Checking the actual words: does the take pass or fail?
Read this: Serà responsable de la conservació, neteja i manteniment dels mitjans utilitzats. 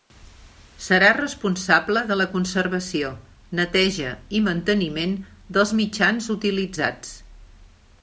pass